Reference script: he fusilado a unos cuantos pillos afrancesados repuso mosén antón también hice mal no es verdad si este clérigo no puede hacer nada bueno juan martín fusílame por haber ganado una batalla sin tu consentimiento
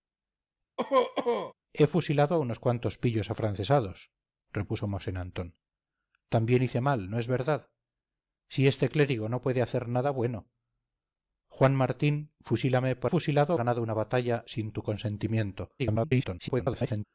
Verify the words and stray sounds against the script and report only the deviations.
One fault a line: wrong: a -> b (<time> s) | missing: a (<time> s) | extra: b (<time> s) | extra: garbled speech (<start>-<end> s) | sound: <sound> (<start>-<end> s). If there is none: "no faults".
sound: cough (0.8-1.5 s)
wrong: haber -> fusilado (13.1 s)
extra: garbled speech (15.8-17.0 s)